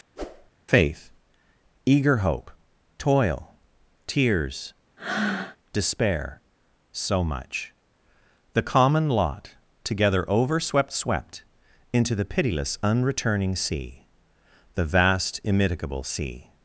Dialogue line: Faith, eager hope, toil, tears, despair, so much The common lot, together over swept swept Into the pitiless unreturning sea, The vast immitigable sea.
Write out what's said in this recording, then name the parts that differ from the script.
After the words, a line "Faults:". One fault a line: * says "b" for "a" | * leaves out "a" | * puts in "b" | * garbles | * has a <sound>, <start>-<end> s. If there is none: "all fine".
Faith, eager hope, toil, tears, despair, so much The common lot, together over swept swept Into the pitiless unreturning sea, The vast immitigable sea.
Faults:
* has a whoosh, 0.2-0.5 s
* has a breath, 5.0-5.6 s